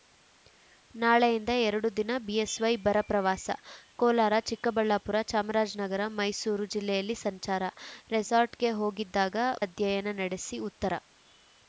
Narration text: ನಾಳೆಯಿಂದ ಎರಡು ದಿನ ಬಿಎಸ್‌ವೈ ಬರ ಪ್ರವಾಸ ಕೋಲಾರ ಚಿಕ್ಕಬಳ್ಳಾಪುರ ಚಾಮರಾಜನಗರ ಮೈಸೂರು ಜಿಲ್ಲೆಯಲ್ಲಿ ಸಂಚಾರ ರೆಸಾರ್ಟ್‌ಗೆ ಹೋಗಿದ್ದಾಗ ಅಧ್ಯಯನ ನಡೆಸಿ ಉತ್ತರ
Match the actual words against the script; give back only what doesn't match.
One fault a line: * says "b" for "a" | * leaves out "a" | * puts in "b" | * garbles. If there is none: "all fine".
all fine